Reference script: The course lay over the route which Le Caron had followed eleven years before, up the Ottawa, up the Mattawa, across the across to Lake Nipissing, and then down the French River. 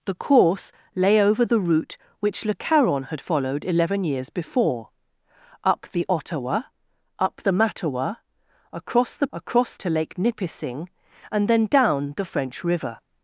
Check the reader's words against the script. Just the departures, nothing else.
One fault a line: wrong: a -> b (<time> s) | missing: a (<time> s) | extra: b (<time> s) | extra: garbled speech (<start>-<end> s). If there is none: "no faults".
no faults